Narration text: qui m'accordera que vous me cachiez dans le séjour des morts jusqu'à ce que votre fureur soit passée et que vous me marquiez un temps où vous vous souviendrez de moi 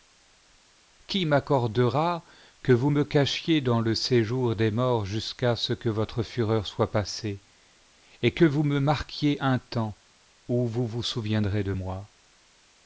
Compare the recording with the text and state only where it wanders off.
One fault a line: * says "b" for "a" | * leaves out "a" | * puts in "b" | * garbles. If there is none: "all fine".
all fine